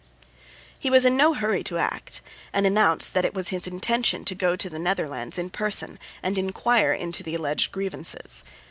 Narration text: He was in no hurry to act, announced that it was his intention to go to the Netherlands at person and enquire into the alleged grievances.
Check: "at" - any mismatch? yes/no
yes